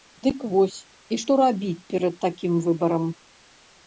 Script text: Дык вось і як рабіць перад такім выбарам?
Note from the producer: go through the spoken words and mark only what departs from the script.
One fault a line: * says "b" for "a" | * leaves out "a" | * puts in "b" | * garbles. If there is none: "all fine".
* says "што" for "як"